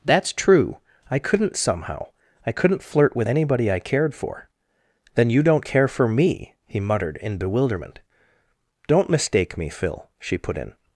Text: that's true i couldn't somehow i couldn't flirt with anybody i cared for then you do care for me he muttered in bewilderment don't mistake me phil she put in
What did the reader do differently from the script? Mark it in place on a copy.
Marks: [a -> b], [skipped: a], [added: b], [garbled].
that's true i couldn't somehow i couldn't flirt with anybody i cared for then you [do -> don't] care for me he muttered in bewilderment don't mistake me phil she put in